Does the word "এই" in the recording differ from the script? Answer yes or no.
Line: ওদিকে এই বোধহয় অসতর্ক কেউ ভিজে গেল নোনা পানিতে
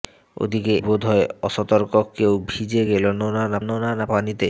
yes